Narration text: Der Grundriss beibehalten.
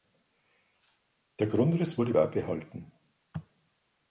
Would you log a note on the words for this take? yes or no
yes